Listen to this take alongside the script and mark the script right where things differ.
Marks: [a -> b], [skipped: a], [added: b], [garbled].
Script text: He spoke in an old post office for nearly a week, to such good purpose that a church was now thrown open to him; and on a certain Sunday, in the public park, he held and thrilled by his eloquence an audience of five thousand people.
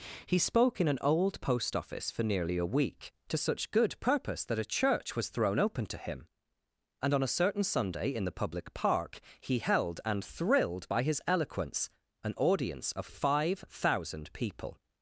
He spoke in an old post office for nearly a week, to such good purpose that a church was [skipped: now] thrown open to him; and on a certain Sunday, in the public park, he held and thrilled by his eloquence an audience of five thousand people.